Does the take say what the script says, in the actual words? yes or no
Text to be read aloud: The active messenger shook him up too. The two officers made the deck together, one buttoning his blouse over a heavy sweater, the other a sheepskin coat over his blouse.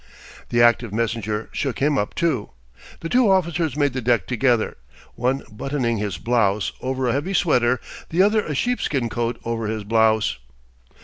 yes